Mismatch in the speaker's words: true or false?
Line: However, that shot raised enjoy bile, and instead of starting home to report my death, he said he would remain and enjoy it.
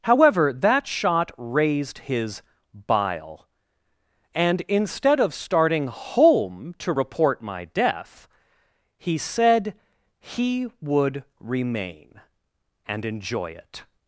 true